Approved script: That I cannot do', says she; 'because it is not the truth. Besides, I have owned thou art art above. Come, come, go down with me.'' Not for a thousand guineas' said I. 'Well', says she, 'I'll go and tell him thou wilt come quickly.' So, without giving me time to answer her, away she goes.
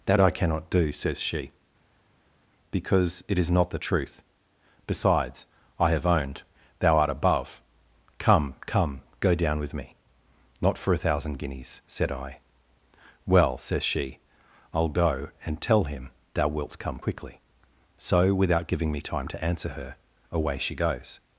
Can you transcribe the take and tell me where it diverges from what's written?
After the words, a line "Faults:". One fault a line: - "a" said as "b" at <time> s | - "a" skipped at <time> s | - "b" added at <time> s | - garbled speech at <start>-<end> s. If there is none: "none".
That I cannot do', says she; 'because it is not the truth. Besides, I have owned thou art above. Come, come, go down with me.'' Not for a thousand guineas' said I. 'Well', says she, 'I'll go and tell him thou wilt come quickly.' So, without giving me time to answer her, away she goes.
Faults:
- "art" skipped at 7.1 s